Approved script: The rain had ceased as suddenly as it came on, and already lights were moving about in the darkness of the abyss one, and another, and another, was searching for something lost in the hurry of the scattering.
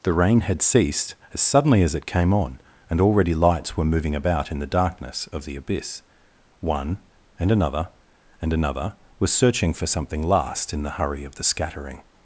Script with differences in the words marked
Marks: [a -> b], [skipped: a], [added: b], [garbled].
The rain had ceased as suddenly as it came on, and already lights were moving about in the darkness of the abyss one, and another, and another, was searching for something [lost -> last] in the hurry of the scattering.